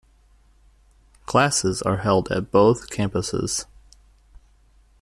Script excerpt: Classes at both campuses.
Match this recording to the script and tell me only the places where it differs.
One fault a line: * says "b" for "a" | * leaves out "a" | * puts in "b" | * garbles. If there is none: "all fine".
* puts in "are held"